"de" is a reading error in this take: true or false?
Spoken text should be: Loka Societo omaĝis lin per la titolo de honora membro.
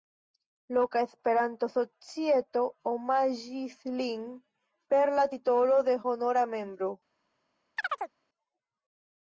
false